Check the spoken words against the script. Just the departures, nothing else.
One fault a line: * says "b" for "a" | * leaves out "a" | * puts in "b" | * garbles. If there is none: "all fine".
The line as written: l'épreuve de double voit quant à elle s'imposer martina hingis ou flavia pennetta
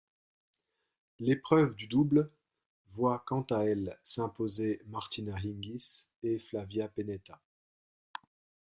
* says "et" for "ou"